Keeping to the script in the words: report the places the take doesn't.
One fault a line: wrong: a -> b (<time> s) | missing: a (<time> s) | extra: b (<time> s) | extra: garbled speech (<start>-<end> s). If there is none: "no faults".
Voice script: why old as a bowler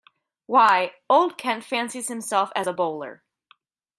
extra: kent fancies himself (1.4 s)